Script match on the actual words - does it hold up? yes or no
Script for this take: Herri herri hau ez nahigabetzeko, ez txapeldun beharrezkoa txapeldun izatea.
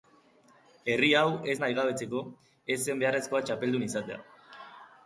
no